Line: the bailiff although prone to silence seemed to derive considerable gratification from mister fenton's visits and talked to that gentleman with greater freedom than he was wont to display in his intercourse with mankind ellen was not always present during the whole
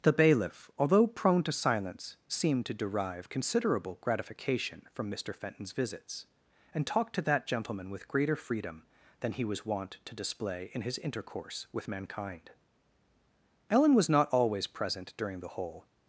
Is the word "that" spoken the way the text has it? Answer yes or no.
yes